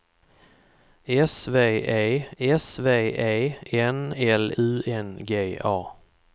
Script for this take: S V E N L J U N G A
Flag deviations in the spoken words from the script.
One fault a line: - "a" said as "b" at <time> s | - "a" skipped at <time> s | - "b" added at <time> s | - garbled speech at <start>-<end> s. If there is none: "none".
- "s V E" added at 2.4 s
- "J" skipped at 4.5 s